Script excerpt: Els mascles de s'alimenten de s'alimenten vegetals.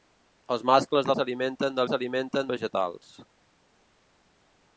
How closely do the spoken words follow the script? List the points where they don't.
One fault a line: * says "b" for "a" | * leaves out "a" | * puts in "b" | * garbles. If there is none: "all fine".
all fine